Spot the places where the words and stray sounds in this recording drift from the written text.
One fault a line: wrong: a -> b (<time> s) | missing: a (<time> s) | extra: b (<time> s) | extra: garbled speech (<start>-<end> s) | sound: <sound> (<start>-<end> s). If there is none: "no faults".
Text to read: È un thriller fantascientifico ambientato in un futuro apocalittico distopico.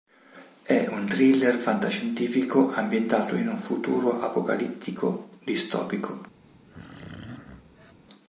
sound: throat clearing (6.5-7.9 s)